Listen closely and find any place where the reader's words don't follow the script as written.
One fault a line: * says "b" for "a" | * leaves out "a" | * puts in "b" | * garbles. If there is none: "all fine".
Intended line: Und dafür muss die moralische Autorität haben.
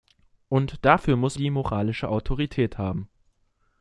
all fine